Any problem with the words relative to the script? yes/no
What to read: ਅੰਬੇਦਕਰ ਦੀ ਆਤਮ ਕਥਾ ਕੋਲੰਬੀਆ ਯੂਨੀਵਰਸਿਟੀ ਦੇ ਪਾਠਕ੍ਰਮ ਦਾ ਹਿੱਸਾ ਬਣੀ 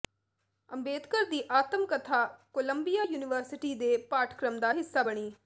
no